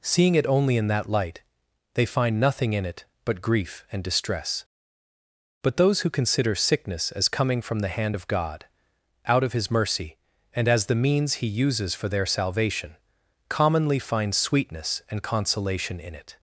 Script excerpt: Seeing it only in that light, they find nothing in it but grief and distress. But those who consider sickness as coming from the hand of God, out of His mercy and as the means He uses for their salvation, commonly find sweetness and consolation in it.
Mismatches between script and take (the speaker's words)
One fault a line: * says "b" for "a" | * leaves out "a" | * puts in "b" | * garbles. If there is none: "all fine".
all fine